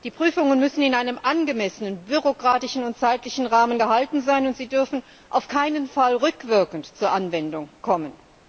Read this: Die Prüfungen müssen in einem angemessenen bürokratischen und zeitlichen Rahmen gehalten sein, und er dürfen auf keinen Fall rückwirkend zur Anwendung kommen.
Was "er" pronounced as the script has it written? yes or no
no